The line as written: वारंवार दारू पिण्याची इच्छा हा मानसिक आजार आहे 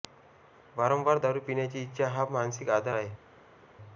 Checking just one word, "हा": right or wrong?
right